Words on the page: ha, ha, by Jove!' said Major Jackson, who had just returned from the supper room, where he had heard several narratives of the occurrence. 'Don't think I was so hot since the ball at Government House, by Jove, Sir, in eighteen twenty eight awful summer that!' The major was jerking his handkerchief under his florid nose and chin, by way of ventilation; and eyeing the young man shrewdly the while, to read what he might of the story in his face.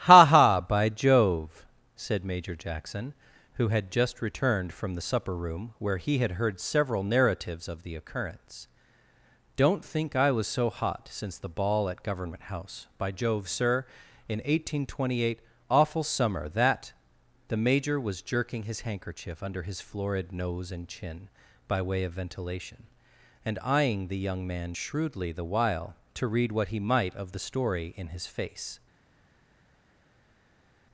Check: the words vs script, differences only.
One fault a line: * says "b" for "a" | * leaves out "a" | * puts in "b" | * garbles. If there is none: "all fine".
all fine